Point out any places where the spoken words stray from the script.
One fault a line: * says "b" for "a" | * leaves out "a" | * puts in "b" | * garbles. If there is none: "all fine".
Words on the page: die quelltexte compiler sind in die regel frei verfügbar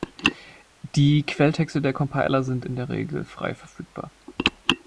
* puts in "der"
* says "der" for "die"